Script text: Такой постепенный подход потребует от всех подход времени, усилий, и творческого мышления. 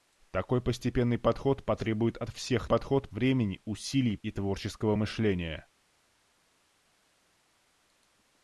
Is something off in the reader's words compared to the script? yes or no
no